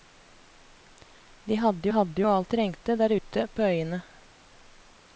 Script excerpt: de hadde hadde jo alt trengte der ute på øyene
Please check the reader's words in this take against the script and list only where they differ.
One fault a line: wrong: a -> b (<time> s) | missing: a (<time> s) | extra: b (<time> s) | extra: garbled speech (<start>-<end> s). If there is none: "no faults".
no faults